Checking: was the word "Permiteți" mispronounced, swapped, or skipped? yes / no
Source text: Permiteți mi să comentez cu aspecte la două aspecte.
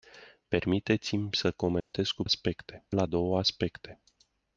no